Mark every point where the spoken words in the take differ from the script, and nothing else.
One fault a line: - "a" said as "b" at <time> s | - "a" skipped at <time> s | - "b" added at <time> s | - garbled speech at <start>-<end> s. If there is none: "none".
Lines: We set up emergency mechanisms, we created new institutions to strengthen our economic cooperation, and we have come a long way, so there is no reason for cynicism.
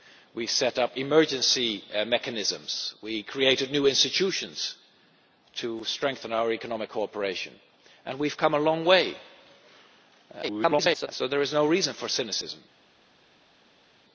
- garbled speech at 10.4-11.1 s